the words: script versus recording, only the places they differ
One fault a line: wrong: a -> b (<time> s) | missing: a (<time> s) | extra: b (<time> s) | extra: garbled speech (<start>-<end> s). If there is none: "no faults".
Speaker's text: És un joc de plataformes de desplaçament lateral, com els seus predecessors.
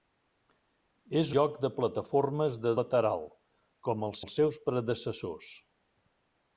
missing: un (1.3 s)
missing: desplaçament (2.7 s)
extra: els (4.2 s)